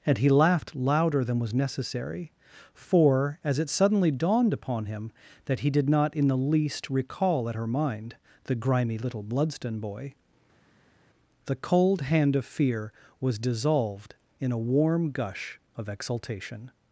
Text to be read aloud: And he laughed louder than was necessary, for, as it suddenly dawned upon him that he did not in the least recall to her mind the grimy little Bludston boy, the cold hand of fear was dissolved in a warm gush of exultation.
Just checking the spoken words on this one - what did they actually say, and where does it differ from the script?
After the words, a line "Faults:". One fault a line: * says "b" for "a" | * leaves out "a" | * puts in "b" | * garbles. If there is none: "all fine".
And he laughed louder than was necessary, for, as it suddenly dawned upon him that he did not in the least recall at her mind the grimy little Bludston boy, the cold hand of fear was dissolved in a warm gush of exultation.
Faults:
* says "at" for "to"